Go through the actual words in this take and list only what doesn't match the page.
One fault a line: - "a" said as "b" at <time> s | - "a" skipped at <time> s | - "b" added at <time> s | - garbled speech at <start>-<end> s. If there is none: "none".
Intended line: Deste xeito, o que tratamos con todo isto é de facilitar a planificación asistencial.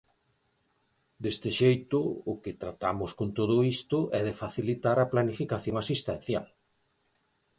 none